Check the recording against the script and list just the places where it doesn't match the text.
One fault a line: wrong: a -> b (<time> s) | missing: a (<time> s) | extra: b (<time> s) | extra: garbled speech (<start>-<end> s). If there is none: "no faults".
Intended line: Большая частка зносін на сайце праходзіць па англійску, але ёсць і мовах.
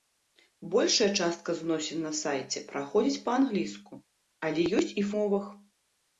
no faults